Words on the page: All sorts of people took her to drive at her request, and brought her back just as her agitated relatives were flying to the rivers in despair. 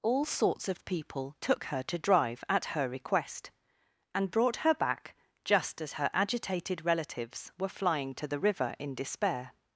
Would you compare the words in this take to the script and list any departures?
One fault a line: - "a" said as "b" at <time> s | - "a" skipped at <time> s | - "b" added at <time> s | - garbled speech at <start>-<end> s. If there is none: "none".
- "rivers" said as "river" at 8.4 s